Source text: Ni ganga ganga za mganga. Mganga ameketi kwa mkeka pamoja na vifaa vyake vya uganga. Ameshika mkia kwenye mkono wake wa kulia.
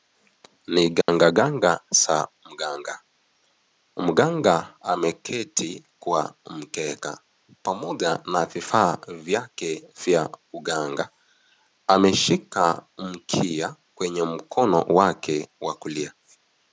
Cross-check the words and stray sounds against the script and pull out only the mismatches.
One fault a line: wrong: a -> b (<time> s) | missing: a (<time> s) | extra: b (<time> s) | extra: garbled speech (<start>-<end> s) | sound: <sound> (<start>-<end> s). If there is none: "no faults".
sound: dropout (1.0-1.1 s)